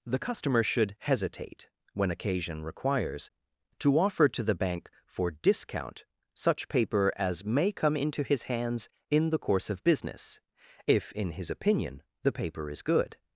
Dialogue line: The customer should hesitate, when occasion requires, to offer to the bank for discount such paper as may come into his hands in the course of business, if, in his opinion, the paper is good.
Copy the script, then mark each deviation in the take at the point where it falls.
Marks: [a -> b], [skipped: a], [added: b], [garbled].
The customer should hesitate, when occasion requires, to offer to the bank for discount such paper as may come into his hands in the course of business, if, in his opinion, the paper is good.